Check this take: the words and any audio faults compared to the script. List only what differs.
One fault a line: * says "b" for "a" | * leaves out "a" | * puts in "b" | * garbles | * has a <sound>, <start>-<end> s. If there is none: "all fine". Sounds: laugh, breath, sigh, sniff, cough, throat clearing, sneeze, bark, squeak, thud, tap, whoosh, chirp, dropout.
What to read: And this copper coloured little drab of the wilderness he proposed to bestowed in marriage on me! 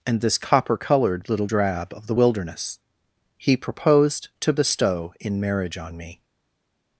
* says "bestow" for "bestowed"